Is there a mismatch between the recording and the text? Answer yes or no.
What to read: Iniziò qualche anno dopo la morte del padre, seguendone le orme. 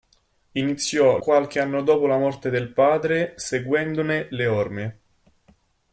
no